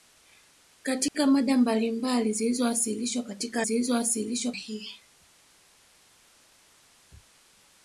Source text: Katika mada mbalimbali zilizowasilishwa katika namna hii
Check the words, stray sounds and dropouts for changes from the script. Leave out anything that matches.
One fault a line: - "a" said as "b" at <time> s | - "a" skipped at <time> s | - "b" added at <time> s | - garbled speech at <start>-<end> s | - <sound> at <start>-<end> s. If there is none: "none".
- dropout at 1.1-1.1 s
- "namna" said as "zilizowasilishwa" at 3.6 s